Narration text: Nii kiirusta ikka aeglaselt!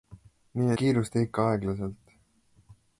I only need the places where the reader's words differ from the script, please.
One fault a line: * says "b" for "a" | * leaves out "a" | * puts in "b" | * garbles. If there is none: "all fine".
all fine